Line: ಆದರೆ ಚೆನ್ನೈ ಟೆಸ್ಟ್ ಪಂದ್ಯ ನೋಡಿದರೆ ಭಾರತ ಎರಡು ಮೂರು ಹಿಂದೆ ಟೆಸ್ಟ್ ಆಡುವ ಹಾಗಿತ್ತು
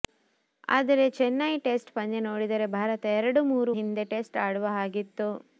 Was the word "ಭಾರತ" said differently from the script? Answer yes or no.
no